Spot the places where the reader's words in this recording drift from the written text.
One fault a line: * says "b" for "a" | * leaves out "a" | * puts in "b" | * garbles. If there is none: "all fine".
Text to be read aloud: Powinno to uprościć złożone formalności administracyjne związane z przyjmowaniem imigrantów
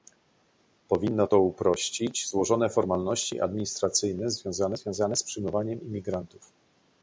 * puts in "związane"